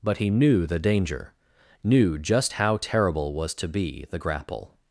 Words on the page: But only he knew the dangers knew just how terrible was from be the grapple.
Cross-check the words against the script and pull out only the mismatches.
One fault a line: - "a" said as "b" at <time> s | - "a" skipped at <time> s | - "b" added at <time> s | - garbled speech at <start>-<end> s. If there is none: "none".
- "only" skipped at 0.2 s
- "dangers" said as "danger" at 0.8 s
- "from" said as "to" at 3.5 s